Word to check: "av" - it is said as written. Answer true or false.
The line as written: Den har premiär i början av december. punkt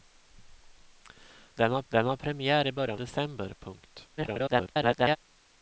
false